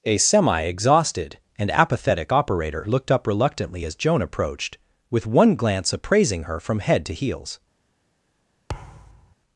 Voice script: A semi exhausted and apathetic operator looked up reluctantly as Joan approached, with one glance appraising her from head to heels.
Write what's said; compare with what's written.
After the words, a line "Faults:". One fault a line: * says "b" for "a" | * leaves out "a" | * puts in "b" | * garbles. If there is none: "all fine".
A semi exhausted and apathetic operator looked up reluctantly as Joan approached, with one glance appraising her from head to heels.
Faults:
all fine